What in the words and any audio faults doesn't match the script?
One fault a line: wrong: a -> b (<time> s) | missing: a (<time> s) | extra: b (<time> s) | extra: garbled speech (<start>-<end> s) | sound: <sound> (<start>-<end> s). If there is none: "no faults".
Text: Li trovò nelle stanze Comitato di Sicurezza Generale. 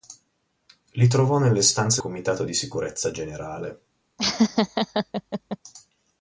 sound: laugh (4.2-5.6 s)